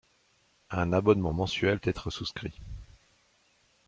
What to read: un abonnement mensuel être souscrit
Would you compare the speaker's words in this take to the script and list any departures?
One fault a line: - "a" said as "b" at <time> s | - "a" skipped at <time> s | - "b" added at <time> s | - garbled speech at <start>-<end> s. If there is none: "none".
none